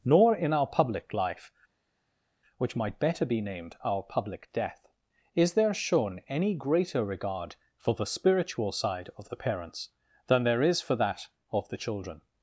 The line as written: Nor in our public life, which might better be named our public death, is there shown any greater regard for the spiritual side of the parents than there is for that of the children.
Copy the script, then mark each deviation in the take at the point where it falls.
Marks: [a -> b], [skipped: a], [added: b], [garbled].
Nor in our public life, which might better be named our public death, is there shown any greater regard for the spiritual side of the parents than there is for that of the children.